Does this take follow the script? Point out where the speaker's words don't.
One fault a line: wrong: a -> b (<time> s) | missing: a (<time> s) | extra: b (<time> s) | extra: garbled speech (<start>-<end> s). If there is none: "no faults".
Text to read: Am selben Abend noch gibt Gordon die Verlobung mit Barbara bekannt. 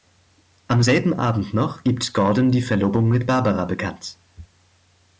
no faults